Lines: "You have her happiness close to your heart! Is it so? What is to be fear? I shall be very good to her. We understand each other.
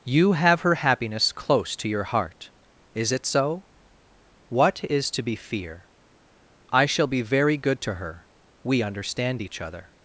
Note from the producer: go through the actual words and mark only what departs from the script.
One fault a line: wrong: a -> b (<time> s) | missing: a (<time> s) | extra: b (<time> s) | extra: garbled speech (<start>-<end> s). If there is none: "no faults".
no faults